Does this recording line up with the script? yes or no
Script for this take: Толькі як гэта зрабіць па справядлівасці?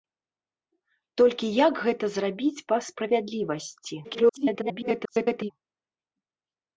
no